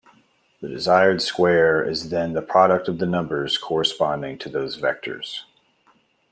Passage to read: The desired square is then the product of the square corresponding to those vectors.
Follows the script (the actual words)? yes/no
no